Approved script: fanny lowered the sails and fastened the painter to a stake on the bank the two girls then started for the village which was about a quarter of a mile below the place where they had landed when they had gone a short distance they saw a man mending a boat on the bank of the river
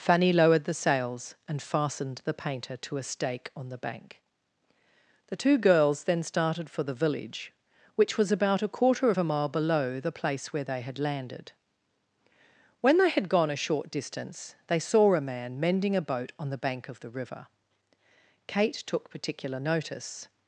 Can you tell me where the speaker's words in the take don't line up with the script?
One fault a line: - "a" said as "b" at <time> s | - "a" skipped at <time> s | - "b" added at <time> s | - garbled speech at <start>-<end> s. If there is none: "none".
- "kate took particular notice" added at 18.5 s